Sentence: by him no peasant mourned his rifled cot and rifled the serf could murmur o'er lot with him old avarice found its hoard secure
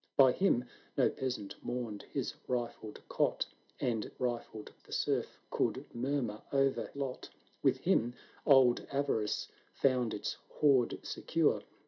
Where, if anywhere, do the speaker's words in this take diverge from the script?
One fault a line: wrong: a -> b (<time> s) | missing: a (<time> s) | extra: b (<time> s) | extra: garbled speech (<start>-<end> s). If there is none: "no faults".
no faults